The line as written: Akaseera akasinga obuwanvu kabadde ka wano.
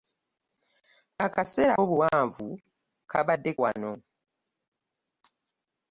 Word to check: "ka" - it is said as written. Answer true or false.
false